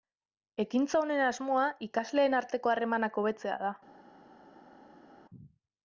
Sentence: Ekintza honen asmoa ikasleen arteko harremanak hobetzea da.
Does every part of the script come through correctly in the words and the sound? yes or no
yes